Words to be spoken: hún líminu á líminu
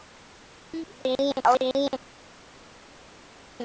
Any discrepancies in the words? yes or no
no